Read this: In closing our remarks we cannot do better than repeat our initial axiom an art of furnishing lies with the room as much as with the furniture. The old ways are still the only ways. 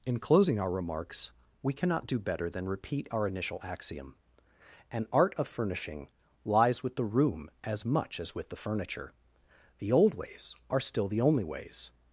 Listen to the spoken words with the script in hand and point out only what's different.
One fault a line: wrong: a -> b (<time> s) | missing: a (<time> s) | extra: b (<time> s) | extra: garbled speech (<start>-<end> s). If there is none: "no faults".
no faults